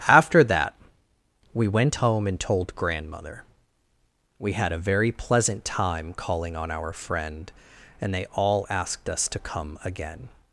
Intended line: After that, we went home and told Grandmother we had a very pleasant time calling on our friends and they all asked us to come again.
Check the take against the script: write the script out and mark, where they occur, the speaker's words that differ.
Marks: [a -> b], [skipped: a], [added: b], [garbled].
After that, we went home and told Grandmother we had a very pleasant time calling on our [friends -> friend] and they all asked us to come again.